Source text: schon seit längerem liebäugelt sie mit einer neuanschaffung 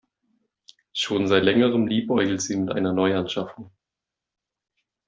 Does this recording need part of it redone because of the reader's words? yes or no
no